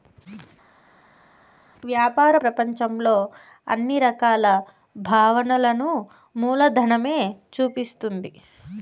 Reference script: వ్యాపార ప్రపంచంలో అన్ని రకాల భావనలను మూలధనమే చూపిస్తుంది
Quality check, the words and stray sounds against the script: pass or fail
pass